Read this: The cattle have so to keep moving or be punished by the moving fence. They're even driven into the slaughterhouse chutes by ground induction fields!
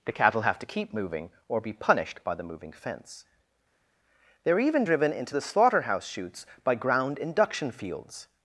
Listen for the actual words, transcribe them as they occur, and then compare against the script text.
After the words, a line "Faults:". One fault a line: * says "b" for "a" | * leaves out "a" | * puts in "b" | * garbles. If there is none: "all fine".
The cattle have to keep moving or be punished by the moving fence. They're even driven into the slaughterhouse chutes by ground induction fields!
Faults:
* leaves out "so"